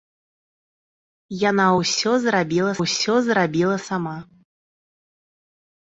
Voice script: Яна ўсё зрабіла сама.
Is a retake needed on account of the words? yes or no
yes